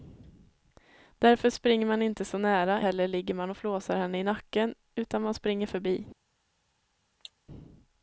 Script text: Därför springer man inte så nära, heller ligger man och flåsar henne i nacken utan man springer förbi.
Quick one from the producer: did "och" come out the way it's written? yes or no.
yes